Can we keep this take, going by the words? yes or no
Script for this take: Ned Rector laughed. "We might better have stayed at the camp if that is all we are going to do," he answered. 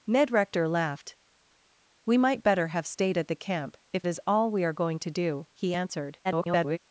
no